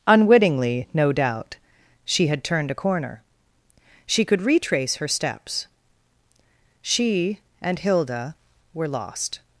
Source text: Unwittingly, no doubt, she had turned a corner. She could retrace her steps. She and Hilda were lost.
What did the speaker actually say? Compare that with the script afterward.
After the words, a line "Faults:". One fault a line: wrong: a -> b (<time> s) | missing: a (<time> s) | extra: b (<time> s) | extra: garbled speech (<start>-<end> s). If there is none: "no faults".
Unwittingly, no doubt, she had turned a corner. She could retrace her steps. She and Hilda were lost.
Faults:
no faults